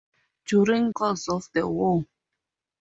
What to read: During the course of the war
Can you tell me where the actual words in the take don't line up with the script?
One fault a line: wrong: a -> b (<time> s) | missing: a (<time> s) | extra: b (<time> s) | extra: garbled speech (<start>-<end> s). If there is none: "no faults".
missing: the (0.9 s)